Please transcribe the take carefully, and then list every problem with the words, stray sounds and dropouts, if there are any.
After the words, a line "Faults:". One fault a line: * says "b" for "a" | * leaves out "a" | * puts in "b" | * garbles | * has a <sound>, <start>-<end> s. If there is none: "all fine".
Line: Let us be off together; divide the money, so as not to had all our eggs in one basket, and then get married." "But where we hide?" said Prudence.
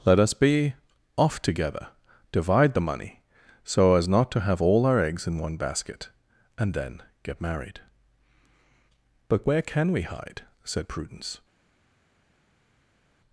Let us be off together; divide the money, so as not to have all our eggs in one basket, and then get married." "But where can we hide?" said Prudence.
Faults:
* says "have" for "had"
* puts in "can"